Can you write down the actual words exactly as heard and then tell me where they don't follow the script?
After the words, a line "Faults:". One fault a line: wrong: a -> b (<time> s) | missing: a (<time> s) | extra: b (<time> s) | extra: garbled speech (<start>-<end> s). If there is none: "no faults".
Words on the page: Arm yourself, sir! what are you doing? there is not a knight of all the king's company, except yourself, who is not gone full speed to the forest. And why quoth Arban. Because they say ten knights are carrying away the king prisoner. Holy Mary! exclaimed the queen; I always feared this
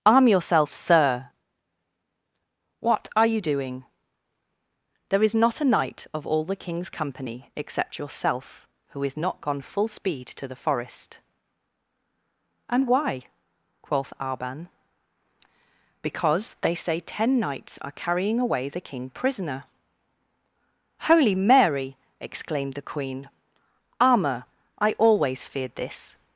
Arm yourself, sir! what are you doing? there is not a knight of all the king's company, except yourself, who is not gone full speed to the forest. And why quoth Arban. Because they say ten knights are carrying away the king prisoner. Holy Mary! exclaimed the queen; armour I always feared this
Faults:
extra: armour (24.0 s)